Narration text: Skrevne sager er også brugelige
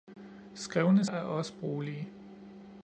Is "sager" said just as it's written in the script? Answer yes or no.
no